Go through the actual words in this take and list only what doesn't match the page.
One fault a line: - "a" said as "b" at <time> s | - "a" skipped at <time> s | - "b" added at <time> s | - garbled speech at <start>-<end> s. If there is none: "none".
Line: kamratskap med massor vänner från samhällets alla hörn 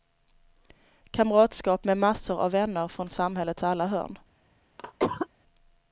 - "av" added at 2.4 s